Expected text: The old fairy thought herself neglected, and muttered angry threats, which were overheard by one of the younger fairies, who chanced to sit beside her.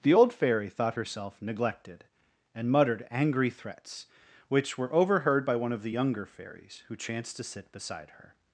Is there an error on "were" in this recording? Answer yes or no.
no